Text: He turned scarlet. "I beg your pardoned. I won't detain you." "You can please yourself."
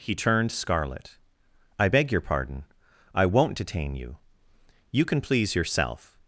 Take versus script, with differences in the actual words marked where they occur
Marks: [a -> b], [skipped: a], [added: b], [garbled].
He turned scarlet. "I beg your [pardoned. -> pardon] I won't detain you." "You can please yourself."